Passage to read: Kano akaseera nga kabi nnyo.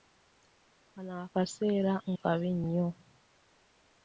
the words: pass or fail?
fail